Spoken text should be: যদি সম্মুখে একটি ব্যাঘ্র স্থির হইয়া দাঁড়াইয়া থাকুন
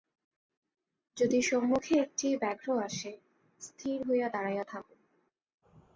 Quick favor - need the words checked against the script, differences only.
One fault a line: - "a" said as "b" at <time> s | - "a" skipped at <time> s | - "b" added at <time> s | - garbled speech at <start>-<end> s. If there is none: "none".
- "আসে" added at 2.8 s